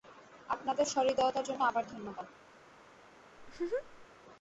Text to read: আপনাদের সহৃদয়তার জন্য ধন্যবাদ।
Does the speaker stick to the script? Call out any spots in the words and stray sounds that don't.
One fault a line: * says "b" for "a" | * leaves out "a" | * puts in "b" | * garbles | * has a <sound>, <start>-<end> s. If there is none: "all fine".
* puts in "আবার"
* has a laugh, 3.4-4.1 s